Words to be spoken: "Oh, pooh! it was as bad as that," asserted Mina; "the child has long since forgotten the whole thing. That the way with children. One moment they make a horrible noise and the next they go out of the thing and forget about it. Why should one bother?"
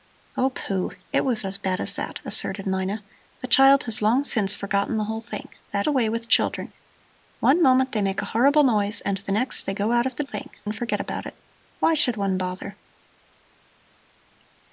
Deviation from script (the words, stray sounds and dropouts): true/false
false